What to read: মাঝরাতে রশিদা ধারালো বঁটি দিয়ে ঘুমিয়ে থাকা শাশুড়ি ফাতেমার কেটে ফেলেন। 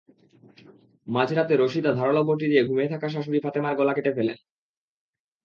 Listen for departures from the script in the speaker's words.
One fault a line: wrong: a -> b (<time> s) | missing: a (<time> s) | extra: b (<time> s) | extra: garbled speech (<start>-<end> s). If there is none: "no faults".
extra: গলা (3.8 s)